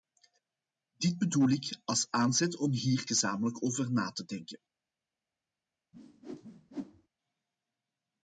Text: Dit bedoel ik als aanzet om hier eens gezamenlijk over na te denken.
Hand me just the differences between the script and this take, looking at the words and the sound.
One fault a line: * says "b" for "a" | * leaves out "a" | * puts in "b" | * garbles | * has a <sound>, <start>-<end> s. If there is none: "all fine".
* leaves out "eens"
* has a whoosh, 5.9-7.1 s